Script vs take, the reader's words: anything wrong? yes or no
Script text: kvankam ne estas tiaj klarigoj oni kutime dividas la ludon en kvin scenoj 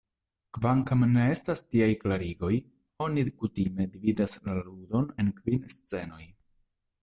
no